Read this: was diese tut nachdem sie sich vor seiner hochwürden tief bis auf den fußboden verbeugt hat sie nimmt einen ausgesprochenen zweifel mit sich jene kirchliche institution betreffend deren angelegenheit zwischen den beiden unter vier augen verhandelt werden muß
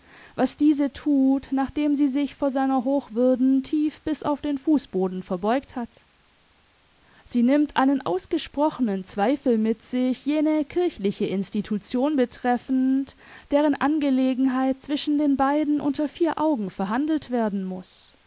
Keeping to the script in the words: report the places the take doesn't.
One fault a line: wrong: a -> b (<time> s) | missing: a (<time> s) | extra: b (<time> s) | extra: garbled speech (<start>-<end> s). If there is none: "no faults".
no faults